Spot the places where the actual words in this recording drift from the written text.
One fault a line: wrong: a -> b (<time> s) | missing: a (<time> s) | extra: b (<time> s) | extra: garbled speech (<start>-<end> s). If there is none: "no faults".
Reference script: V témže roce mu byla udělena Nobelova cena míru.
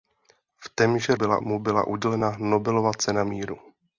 wrong: roce -> byla (1.1 s)